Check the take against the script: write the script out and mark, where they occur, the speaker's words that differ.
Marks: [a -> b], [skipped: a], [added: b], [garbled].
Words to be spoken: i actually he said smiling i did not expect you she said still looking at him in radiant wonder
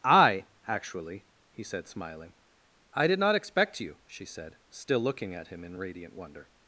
i actually he said smiling i did not expect you she said still looking at him in radiant wonder